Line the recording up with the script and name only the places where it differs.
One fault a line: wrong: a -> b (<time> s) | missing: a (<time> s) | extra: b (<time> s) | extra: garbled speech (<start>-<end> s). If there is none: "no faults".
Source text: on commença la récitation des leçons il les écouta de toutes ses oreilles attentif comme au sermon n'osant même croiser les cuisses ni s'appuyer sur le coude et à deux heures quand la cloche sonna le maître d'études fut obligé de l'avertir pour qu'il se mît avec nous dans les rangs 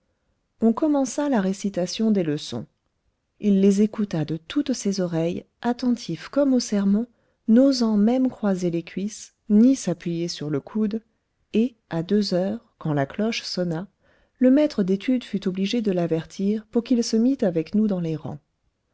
no faults